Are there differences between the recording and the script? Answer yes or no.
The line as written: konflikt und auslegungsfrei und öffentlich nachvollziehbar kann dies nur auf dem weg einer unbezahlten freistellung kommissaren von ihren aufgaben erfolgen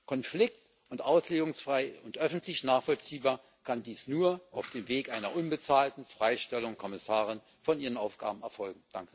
no